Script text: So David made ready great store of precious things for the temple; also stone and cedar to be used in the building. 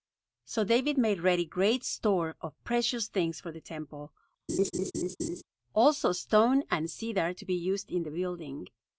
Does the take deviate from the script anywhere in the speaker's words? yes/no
no